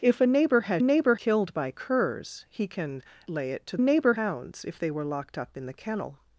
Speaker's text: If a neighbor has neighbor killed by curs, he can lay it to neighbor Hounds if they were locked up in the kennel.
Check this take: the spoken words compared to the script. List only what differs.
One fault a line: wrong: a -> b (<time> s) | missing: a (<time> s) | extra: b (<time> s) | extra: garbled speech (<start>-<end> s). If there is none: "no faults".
no faults